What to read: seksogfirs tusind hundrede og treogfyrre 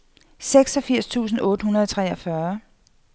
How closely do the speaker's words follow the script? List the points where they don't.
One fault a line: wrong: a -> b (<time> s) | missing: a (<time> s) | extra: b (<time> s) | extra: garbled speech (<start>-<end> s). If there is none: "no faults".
extra: otte (1.4 s)